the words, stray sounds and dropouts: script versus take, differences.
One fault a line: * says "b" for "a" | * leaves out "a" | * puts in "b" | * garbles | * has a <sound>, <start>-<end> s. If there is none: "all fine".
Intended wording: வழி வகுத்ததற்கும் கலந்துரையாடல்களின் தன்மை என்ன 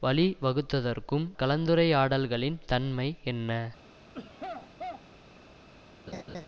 * has a throat clearing, 4.1-5.1 s
* has a laugh, 6.1-6.5 s